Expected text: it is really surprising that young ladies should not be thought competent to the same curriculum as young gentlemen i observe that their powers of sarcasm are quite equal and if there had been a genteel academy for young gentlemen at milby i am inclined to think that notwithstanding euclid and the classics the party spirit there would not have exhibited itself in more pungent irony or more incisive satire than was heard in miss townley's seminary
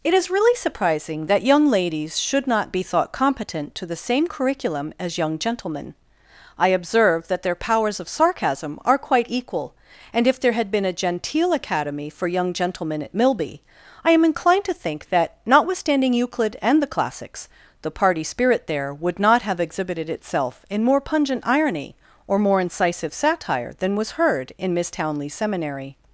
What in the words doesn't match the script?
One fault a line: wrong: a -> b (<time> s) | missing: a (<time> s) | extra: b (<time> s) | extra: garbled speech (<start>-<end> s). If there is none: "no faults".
no faults